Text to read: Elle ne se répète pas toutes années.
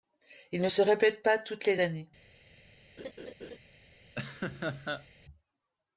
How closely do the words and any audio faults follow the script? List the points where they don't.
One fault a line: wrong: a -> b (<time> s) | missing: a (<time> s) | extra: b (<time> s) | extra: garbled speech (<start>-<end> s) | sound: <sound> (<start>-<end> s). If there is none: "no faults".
wrong: Elle -> Il (0.5 s)
extra: les (1.6 s)
sound: laugh (3.0-3.6 s)
sound: laugh (4.2-5.1 s)